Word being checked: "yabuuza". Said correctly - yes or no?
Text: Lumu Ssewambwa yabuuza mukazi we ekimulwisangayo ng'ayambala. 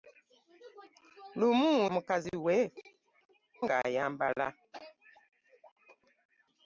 no